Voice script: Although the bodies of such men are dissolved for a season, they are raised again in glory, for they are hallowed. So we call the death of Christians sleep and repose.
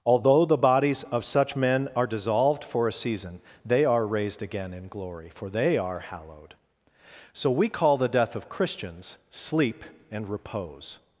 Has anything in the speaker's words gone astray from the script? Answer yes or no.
no